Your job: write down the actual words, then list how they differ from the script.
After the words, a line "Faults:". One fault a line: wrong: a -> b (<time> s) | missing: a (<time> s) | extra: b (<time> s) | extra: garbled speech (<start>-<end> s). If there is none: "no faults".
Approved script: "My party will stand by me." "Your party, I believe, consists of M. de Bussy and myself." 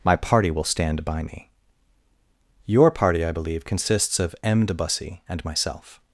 "My party will stand by me." "Your party, I believe, consists of M. de Bussy and myself."
Faults:
no faults